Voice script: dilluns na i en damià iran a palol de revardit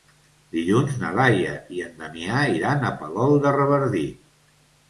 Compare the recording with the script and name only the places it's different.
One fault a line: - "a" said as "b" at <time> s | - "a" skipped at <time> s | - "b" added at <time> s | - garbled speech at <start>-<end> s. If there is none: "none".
- "laia" added at 1.2 s